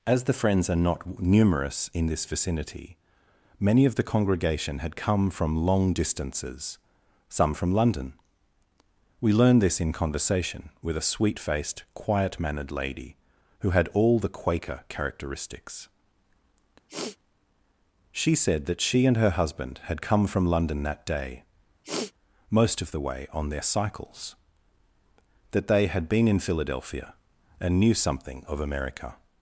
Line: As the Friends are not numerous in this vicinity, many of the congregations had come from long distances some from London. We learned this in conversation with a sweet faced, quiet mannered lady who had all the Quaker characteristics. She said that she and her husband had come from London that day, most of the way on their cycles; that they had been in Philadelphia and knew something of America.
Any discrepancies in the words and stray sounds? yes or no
yes